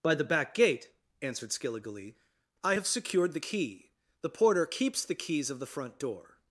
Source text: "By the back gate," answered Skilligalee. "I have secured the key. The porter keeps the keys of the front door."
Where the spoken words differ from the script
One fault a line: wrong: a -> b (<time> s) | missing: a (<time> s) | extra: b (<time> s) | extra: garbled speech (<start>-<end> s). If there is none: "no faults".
no faults